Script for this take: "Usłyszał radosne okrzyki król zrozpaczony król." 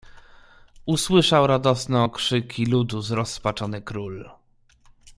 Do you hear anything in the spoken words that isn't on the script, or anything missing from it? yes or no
yes